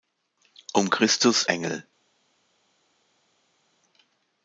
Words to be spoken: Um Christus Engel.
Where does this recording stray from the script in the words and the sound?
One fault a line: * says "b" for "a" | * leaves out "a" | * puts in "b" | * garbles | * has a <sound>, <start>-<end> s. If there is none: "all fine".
all fine